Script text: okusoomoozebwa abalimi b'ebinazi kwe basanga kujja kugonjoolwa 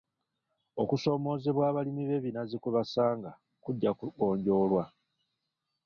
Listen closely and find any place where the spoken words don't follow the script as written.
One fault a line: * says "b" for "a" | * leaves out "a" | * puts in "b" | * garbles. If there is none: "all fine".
all fine